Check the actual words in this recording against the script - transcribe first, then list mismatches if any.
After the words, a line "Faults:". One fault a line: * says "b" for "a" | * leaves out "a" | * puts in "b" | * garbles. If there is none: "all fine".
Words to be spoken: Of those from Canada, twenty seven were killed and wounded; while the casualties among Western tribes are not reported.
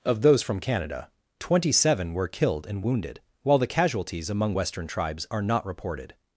Of those from Canada, twenty seven were killed and wounded; while the casualties among Western tribes are not reported.
Faults:
all fine